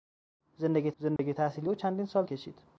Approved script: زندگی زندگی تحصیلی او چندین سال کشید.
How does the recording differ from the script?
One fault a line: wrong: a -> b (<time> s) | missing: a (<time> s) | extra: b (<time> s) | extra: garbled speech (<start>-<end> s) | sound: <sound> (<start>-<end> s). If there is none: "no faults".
sound: dropout (1.2-1.2 s)